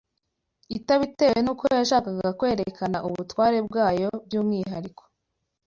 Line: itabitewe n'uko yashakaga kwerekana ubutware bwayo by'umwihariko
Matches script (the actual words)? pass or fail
pass